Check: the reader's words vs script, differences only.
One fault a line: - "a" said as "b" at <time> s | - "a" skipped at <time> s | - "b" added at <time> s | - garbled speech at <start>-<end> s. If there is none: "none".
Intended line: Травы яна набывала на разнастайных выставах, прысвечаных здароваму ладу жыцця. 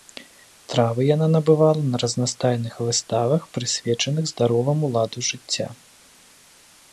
none